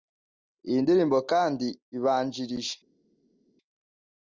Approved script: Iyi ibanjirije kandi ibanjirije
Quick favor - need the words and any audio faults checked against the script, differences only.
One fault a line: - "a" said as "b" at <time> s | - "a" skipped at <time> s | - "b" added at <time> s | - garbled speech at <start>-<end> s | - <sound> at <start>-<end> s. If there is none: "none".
- "ibanjirije" said as "ndirimbo" at 0.8 s